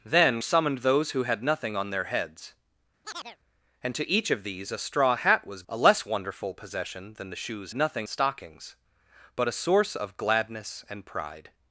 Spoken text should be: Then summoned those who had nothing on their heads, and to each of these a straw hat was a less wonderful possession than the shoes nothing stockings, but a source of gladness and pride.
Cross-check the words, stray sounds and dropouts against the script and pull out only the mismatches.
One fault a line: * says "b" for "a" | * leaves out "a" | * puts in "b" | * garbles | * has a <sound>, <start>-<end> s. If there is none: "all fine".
* has a chirp, 3.0-3.4 s